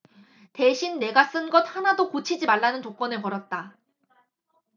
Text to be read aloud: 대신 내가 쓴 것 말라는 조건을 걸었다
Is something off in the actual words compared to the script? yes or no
yes